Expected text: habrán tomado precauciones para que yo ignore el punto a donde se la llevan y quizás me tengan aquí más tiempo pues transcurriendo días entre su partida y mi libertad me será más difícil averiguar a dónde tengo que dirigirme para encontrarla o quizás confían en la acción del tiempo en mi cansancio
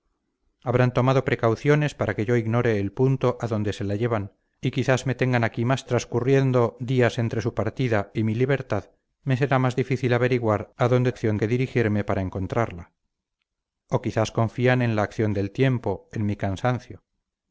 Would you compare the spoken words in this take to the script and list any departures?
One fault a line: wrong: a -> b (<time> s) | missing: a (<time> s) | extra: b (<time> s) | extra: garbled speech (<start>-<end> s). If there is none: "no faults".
missing: tiempo pues (5.8 s)
wrong: tengo -> acción (11.1 s)